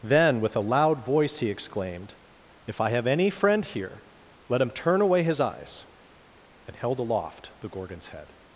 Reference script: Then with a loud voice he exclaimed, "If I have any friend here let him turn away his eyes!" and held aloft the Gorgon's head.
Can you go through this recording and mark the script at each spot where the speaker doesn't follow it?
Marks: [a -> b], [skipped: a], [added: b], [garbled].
Then with a loud voice he exclaimed, "If I have any friend here let him turn away his eyes!" and held aloft the Gorgon's head.